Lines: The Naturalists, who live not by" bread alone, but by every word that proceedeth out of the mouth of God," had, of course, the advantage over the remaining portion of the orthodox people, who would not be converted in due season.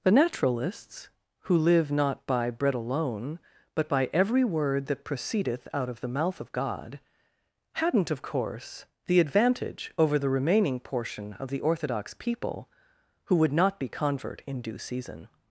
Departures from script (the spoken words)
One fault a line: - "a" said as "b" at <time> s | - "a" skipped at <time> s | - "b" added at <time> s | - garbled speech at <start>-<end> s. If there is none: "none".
- "had" said as "hadn't" at 7.7 s
- "converted" said as "convert" at 13.9 s